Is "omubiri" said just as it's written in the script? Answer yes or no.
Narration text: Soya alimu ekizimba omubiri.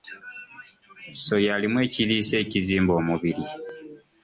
yes